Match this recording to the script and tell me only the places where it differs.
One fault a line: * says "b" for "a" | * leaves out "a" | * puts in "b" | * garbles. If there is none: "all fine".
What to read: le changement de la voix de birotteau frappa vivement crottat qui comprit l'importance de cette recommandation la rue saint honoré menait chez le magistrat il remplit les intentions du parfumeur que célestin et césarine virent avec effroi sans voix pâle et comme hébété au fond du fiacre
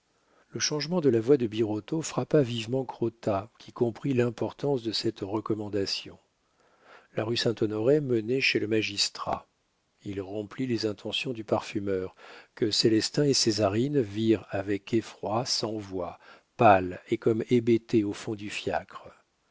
all fine